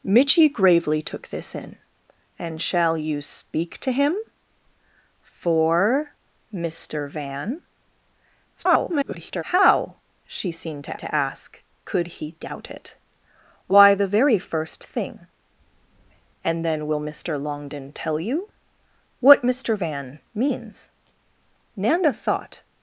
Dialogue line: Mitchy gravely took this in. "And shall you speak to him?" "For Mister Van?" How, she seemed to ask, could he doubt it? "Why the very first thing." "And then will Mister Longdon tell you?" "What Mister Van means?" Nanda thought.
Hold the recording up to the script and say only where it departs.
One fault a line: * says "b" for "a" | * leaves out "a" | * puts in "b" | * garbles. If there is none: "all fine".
* garbles
* puts in "to"